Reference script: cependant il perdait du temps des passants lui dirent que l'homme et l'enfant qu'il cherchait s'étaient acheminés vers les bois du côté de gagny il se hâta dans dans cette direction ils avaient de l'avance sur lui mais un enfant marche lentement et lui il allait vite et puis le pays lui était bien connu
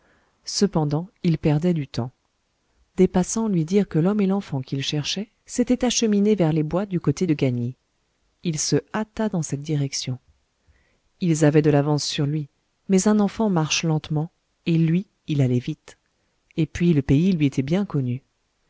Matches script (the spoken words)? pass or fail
fail